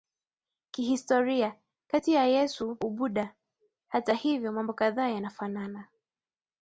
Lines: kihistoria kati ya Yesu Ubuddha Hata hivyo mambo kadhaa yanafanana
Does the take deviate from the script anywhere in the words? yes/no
no